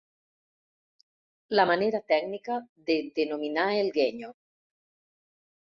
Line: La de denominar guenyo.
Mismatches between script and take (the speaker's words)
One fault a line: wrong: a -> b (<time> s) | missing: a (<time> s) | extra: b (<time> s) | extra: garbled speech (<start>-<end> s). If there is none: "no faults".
extra: manera tècnica (1.7 s)
extra: el (3.8 s)